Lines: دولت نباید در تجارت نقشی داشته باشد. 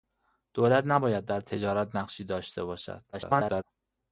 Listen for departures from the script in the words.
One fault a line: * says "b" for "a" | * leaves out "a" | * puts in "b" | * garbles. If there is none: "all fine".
* garbles